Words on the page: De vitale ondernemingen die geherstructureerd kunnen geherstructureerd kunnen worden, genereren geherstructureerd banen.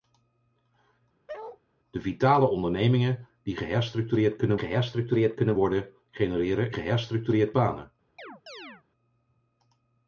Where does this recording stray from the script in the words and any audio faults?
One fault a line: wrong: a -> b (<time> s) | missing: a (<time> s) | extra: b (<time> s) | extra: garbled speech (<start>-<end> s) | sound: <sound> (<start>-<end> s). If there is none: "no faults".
sound: bark (1.3-1.6 s)
sound: chirp (8.2-8.8 s)